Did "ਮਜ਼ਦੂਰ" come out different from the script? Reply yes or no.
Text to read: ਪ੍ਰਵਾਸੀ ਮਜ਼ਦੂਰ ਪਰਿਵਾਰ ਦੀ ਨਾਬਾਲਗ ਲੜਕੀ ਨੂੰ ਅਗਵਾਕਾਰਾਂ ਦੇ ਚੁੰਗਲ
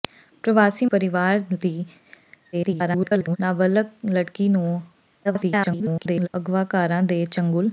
yes